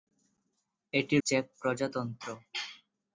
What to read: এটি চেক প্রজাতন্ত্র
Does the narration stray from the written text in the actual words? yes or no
no